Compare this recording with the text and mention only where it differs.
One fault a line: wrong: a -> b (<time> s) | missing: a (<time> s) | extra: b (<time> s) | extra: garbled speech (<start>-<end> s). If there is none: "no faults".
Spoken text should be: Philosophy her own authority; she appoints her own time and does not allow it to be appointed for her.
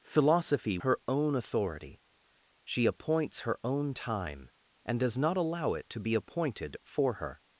no faults